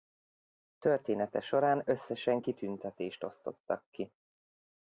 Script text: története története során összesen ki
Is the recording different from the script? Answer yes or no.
yes